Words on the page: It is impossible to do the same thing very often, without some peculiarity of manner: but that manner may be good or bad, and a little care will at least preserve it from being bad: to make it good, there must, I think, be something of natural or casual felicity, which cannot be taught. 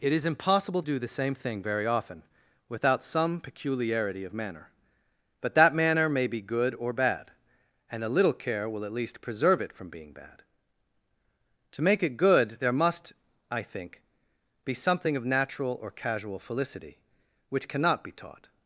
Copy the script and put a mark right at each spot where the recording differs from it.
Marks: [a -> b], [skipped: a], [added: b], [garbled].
It is impossible [skipped: to] do the same thing very often, without some peculiarity of manner: but that manner may be good or bad, and a little care will at least preserve it from being bad: to make it good, there must, I think, be something of natural or casual felicity, which cannot be taught.